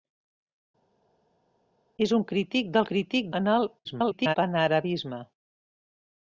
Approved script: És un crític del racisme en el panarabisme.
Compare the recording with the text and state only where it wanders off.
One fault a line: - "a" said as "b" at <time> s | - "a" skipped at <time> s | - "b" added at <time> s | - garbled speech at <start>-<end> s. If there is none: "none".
- "racisme" said as "crític" at 2.9 s
- garbled speech at 3.8-4.4 s